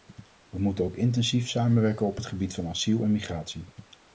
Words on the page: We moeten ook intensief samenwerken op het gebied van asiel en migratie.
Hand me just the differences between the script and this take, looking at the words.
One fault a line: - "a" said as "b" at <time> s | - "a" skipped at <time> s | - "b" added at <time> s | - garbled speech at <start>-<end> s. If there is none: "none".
none